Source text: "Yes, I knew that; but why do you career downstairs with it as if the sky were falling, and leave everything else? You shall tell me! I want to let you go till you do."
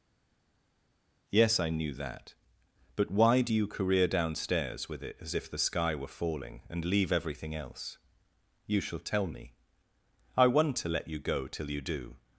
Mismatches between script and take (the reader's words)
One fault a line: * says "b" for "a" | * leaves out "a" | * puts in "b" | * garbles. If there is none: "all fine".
all fine